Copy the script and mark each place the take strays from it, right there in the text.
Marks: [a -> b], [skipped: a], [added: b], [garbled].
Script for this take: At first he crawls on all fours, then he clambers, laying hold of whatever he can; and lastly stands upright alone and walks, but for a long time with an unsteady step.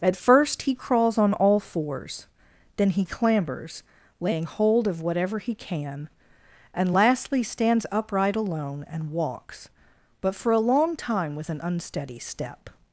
At first he crawls on all fours, then he clambers, laying hold of whatever he can; and lastly stands upright alone and walks, but for a long time with an unsteady step.